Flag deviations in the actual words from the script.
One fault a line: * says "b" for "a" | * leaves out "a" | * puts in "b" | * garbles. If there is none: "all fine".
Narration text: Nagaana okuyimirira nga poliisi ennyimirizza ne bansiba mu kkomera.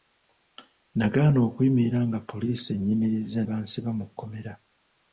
* leaves out "ne"